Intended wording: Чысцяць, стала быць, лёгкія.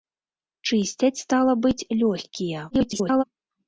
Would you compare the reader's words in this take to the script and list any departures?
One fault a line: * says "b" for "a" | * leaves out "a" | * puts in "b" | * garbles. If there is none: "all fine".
* garbles